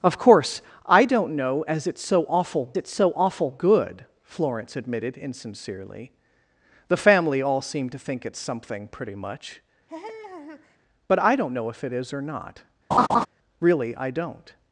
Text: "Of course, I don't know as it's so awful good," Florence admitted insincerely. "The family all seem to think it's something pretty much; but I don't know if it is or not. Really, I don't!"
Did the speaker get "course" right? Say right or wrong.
right